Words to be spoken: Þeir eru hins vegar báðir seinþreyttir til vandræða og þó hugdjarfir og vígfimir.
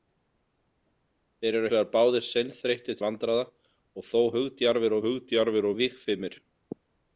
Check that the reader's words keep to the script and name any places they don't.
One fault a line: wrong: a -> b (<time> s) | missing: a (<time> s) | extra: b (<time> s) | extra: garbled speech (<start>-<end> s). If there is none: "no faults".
missing: hins (1.7 s)
missing: til (3.0 s)
extra: hugdjarfir (5.1 s)